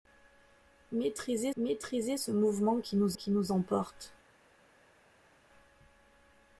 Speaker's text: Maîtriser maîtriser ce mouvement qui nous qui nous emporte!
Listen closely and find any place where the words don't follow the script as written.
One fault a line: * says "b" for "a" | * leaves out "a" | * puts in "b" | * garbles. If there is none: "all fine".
all fine